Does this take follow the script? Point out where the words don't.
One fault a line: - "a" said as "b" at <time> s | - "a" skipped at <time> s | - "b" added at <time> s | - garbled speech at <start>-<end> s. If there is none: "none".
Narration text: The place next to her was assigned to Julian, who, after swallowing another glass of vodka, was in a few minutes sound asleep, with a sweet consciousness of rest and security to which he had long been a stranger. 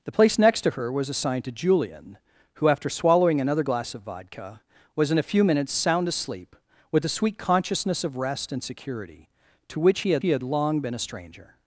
- "he had" added at 10.2 s